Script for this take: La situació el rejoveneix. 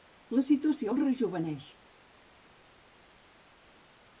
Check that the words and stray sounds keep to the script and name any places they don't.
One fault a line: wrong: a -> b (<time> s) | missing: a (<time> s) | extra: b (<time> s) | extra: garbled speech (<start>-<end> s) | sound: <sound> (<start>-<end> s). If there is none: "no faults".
no faults